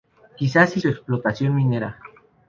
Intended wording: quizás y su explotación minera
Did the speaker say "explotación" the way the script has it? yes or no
yes